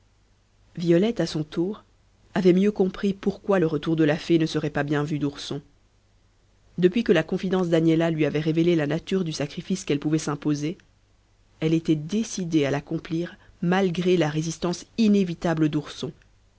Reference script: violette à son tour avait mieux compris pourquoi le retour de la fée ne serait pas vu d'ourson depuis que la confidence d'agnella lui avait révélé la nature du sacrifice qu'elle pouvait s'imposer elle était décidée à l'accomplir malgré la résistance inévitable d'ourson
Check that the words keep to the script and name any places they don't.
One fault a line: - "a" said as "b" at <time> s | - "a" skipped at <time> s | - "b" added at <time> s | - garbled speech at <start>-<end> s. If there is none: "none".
- "bien" added at 4.8 s